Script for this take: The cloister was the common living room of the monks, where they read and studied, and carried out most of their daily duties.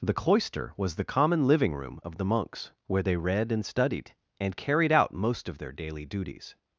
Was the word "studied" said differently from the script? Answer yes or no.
no